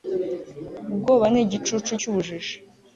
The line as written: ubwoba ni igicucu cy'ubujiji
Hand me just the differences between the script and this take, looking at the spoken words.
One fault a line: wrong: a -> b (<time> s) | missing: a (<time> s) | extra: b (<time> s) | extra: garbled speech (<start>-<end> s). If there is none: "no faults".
no faults